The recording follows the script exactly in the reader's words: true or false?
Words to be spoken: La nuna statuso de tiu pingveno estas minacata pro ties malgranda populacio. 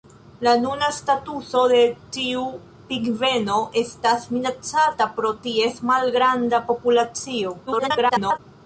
false